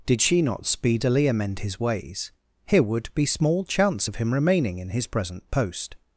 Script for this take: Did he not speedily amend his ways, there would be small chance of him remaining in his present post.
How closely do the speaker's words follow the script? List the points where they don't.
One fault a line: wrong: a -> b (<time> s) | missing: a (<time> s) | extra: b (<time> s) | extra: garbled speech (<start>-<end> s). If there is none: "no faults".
wrong: he -> she (0.2 s)
wrong: there -> here (2.6 s)